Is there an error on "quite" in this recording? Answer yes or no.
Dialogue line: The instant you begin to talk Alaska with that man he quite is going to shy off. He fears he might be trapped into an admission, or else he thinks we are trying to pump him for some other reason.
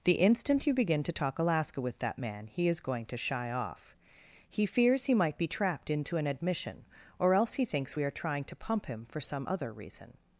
yes